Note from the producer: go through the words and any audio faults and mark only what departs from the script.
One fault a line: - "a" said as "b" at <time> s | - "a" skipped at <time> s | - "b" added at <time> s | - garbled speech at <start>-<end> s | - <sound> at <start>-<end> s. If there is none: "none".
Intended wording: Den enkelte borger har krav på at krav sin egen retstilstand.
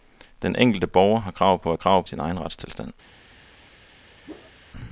- whoosh at 4.2-4.5 s